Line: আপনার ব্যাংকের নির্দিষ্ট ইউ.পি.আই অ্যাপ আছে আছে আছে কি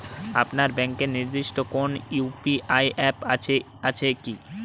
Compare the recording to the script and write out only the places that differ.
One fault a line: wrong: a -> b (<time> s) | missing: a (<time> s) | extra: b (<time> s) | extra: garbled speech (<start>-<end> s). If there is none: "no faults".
extra: কোনো (1.7 s)
missing: আছে (4.1 s)